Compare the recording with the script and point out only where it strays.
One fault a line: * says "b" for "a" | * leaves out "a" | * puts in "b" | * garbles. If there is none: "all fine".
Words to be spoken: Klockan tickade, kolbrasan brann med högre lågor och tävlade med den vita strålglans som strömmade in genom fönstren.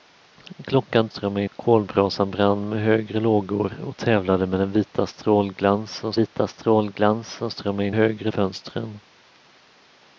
* says "strömmade" for "tickade"
* puts in "vita strålglans som"
* says "högre" for "genom"